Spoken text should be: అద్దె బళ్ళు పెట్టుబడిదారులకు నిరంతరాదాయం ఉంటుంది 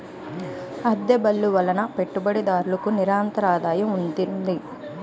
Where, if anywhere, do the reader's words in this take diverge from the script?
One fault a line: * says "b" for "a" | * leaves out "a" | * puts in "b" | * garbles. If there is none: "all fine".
* puts in "వలన"